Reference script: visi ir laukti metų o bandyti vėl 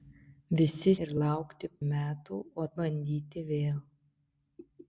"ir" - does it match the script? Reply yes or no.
yes